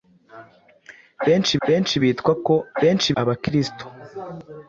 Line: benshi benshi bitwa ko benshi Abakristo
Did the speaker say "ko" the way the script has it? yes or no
yes